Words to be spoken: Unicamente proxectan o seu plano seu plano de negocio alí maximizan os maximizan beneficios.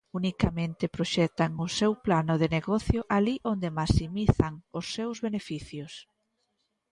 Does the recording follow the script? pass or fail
fail